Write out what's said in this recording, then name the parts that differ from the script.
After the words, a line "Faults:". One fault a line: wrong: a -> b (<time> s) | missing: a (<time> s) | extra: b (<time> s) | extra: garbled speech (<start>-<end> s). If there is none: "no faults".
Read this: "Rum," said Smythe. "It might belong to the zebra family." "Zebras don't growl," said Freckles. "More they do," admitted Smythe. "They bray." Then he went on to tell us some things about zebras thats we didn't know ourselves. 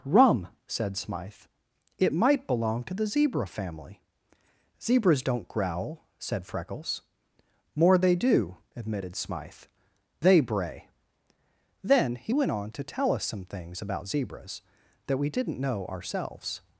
"Rum," said Smythe. "It might belong to the zebra family." "Zebras don't growl," said Freckles. "More they do," admitted Smythe. "They bray." Then he went on to tell us some things about zebras that we didn't know ourselves.
Faults:
wrong: thats -> that (15.1 s)